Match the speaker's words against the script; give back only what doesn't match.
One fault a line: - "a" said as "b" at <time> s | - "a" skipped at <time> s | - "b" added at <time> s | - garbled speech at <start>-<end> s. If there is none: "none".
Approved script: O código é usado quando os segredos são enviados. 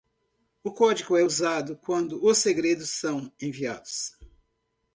none